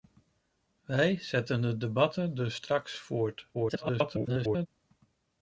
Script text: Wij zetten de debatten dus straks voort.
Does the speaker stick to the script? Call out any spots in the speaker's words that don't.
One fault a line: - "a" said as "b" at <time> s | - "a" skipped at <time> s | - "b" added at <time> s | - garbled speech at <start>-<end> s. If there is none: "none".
- garbled speech at 3.5-4.7 s